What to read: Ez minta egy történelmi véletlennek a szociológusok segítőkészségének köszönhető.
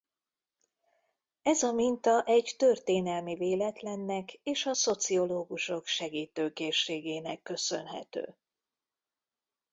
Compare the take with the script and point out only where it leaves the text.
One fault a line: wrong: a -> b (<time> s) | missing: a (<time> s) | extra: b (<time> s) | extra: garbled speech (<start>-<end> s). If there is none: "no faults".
extra: a (1.6 s)
extra: és (4.3 s)